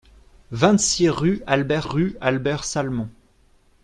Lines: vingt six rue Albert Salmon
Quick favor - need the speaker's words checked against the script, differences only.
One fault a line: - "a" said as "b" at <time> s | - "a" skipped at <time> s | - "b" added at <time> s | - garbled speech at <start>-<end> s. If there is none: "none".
- "rue Albert" added at 1.8 s